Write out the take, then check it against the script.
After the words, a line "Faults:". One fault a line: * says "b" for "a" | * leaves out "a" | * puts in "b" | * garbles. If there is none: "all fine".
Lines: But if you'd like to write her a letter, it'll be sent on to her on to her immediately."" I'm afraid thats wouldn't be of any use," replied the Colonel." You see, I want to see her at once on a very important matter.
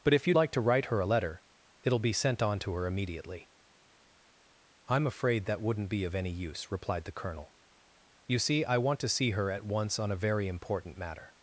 But if you'd like to write her a letter, it'll be sent on to her immediately."" I'm afraid that wouldn't be of any use," replied the Colonel." You see, I want to see her at once on a very important matter.
Faults:
* leaves out "on to her"
* says "that" for "thats"